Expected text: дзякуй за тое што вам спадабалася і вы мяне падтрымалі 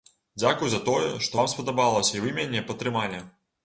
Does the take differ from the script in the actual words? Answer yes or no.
no